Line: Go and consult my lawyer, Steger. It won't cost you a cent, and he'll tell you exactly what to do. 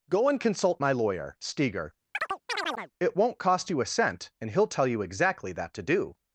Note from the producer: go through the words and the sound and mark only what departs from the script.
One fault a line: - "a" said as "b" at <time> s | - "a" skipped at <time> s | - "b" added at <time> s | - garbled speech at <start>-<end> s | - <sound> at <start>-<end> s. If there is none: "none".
- chirp at 2.1-2.9 s
- "what" said as "that" at 5.5 s